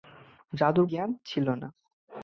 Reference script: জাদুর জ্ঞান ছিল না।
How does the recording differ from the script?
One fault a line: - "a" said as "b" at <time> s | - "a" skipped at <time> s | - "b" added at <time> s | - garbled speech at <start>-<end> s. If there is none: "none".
none